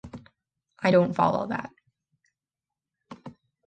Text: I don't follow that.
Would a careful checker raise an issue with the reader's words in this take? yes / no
no